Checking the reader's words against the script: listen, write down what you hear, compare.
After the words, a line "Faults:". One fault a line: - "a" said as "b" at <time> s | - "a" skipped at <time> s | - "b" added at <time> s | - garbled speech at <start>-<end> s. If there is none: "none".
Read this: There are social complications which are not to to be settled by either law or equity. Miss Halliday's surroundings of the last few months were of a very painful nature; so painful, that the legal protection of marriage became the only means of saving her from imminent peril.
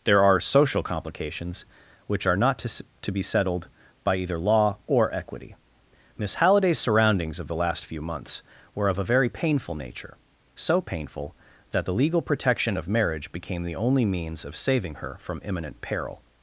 There are social complications which are not to to be settled by either law or equity. Miss Halliday's surroundings of the last few months were of a very painful nature; so painful, that the legal protection of marriage became the only means of saving her from imminent peril.
Faults:
none